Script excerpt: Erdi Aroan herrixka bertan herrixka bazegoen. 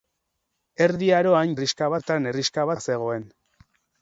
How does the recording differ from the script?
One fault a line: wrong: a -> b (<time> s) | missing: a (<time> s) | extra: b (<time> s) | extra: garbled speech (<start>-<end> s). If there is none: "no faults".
no faults